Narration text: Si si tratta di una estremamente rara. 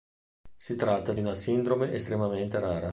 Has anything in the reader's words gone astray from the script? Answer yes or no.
yes